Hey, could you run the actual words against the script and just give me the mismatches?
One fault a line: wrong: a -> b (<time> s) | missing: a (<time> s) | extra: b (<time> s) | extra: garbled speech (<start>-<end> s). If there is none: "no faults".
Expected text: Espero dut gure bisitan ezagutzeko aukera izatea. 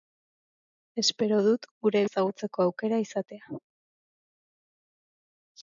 missing: bisitan (2.0 s)